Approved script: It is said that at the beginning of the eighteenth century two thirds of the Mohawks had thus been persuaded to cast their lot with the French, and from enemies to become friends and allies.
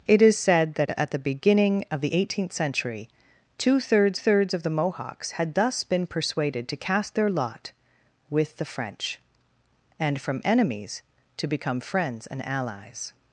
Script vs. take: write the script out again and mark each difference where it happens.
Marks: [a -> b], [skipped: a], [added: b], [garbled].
It is said that at the beginning of the eighteenth century two thirds [added: thirds] of the Mohawks had thus been persuaded to cast their lot with the French, and from enemies to become friends and allies.